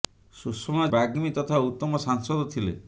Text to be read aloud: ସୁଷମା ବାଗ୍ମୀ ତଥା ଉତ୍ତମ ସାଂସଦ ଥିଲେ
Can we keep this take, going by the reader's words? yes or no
yes